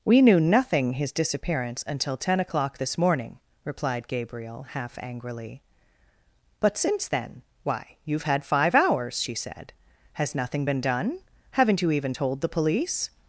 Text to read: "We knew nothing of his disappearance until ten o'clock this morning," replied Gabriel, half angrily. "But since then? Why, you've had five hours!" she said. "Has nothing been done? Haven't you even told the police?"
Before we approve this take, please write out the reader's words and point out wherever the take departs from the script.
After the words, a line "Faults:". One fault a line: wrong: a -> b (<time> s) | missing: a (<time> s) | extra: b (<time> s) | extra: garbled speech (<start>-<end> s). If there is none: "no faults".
"We knew nothing his disappearance until ten o'clock this morning," replied Gabriel, half angrily. "But since then? Why, you've had five hours!" she said. "Has nothing been done? Haven't you even told the police?"
Faults:
missing: of (0.9 s)